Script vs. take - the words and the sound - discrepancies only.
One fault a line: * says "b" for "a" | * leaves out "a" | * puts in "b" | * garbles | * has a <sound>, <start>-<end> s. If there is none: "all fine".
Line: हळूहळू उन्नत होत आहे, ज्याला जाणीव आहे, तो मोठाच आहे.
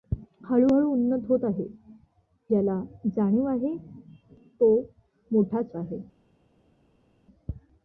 all fine